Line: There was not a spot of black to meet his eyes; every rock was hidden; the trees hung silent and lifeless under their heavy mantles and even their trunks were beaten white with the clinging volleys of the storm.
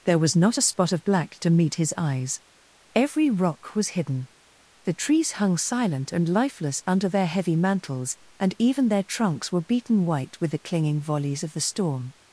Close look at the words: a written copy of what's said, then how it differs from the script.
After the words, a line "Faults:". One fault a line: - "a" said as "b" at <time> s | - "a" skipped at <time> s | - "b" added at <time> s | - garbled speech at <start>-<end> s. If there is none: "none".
There was not a spot of black to meet his eyes; every rock was hidden; the trees hung silent and lifeless under their heavy mantles and even their trunks were beaten white with the clinging volleys of the storm.
Faults:
none